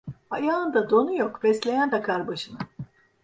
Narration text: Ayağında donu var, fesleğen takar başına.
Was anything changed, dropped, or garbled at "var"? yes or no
yes